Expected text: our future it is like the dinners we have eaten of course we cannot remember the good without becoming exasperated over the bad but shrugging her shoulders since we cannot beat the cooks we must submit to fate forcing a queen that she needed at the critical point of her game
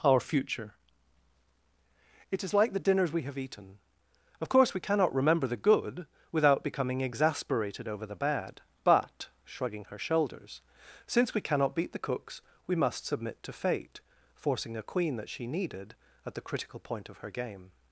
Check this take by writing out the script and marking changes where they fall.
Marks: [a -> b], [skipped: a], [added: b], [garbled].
our future it is like the dinners we have eaten of course we cannot remember the good without becoming exasperated over the bad but shrugging her shoulders since we cannot beat the cooks we must submit to fate forcing a queen that she needed at the critical point of her game